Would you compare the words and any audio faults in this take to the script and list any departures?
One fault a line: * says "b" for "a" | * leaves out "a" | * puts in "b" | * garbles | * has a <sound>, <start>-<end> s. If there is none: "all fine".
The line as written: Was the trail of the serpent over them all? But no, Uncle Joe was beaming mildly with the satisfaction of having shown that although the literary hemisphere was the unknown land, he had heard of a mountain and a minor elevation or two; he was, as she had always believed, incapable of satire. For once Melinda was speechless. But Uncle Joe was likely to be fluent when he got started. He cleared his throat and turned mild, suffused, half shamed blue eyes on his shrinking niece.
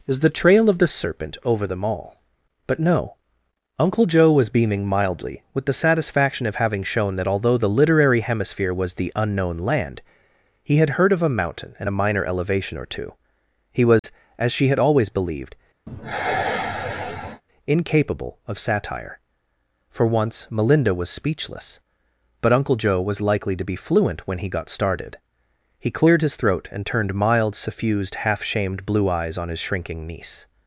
* says "Is" for "Was"
* has a dropout, 14.0-14.0 s
* has a sigh, 15.9-17.4 s